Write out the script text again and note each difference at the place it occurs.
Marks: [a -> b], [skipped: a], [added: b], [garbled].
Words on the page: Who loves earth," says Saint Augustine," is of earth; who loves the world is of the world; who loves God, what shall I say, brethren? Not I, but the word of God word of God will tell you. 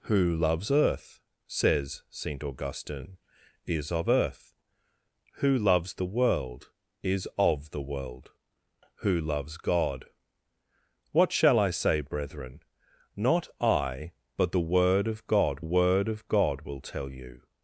Who loves earth," says Saint Augustine," is of earth; who loves the world is of the world; who loves God, what shall I say, brethren? Not I, but the word of God word of God will tell you.